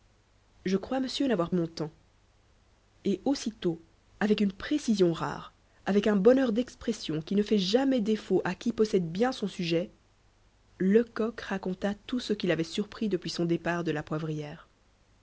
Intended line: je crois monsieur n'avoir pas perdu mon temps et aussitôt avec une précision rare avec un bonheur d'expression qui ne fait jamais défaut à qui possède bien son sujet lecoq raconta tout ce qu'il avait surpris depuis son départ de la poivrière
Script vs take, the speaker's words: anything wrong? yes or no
yes